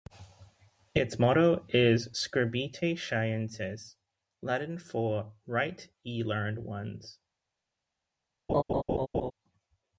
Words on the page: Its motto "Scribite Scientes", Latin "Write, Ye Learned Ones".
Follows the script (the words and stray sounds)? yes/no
no